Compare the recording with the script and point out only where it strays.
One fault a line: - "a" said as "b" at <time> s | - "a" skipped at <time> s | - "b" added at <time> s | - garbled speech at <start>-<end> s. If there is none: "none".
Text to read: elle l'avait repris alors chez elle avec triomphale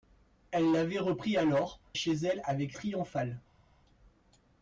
none